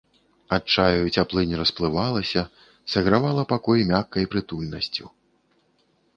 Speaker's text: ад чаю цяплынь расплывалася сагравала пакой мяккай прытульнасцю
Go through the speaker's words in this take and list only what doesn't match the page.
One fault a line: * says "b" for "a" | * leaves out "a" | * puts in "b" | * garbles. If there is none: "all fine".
all fine